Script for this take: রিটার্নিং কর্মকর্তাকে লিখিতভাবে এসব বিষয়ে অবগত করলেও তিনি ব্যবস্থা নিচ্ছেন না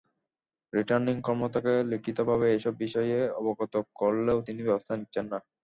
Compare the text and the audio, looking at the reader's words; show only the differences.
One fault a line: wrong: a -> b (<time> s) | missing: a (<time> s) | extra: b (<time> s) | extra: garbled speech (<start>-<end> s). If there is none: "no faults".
no faults